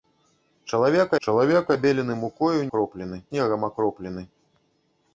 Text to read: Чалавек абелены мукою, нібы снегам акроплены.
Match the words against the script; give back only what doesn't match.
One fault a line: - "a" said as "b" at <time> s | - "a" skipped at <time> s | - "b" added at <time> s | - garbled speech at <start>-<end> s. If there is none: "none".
- "чалавек" added at 1.3 s
- "нібы" said as "акроплены" at 2.7 s